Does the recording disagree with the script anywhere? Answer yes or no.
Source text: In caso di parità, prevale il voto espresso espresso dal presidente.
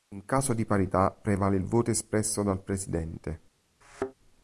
yes